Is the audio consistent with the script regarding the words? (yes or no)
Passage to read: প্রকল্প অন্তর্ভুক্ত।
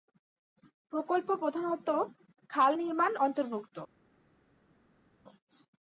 no